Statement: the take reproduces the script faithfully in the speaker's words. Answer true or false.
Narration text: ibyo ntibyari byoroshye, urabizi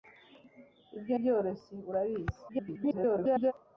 false